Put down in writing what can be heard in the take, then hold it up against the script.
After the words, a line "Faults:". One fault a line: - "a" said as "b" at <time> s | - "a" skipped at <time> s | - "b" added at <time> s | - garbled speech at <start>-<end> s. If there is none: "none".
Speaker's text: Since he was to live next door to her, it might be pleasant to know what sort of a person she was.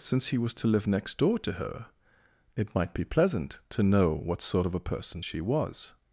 Since he was to live next door to her, it might be pleasant to know what sort of a person she was.
Faults:
none